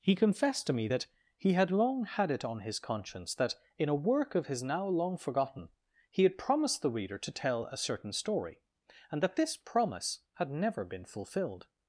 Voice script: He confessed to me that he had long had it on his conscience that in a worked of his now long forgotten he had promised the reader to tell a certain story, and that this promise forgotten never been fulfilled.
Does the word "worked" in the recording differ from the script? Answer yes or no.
yes